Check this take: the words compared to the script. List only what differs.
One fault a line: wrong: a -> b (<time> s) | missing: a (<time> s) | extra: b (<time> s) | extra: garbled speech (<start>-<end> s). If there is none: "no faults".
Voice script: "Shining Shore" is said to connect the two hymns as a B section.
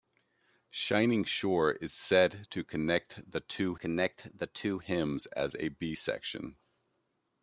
extra: connect the two (3.7 s)